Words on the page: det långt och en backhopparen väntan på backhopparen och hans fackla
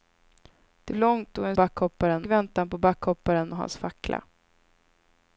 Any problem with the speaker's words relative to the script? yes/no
no